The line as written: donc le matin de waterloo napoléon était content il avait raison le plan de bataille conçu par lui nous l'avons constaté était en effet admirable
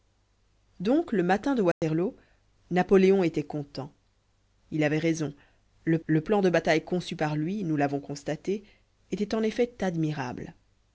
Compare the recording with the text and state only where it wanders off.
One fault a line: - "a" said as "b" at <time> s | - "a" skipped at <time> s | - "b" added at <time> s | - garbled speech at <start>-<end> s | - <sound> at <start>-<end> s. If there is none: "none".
- dropout at 1.7-1.8 s
- "le" added at 6.1 s